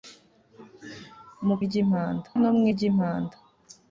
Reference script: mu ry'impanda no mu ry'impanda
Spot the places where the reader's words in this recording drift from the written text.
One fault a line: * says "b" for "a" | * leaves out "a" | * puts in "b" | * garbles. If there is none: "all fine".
all fine